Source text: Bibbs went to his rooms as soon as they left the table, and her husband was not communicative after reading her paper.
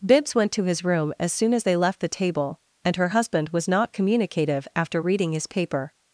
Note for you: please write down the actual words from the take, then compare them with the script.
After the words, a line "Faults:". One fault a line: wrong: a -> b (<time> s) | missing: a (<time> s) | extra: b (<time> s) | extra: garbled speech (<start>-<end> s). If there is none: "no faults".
Bibbs went to his room as soon as they left the table, and her husband was not communicative after reading his paper.
Faults:
wrong: rooms -> room (0.8 s)
wrong: her -> his (5.3 s)